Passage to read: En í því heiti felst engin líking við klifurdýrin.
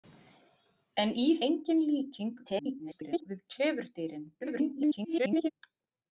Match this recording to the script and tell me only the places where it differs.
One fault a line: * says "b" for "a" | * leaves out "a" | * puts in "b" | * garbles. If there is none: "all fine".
* leaves out "því heiti felst"
* garbles
* garbles